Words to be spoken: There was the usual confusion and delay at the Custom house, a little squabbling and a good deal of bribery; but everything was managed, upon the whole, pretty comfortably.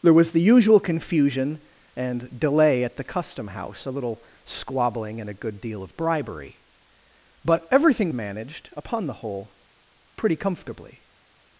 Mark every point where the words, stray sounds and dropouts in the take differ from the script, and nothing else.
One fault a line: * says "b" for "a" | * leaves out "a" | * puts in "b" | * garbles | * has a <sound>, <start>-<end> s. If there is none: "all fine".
* leaves out "was"